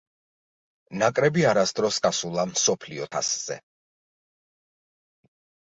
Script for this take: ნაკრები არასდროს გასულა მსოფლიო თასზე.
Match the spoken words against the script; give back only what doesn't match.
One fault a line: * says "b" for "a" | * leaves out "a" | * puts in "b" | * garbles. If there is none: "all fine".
all fine